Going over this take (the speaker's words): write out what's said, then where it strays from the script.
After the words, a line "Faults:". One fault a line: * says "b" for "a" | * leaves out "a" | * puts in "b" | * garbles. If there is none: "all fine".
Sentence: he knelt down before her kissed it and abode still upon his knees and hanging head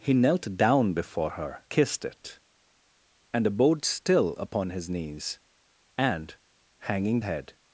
he knelt down before her kissed it and abode still upon his knees and hanging head
Faults:
all fine